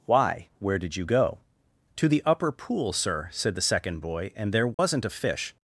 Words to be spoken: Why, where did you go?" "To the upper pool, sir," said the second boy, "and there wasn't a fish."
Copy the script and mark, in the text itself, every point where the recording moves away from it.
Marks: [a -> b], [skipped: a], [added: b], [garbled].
Why, where did you go?" "To the upper pool, sir," said the second boy, "and there wasn't a fish."